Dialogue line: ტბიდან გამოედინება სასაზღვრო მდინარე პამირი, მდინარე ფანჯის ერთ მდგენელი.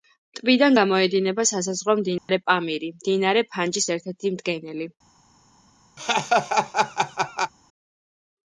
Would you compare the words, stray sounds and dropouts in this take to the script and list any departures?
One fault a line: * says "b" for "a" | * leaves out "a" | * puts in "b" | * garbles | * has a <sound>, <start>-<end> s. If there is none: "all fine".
* has a dropout, 2.2-2.3 s
* puts in "ერთი"
* has a laugh, 6.0-7.5 s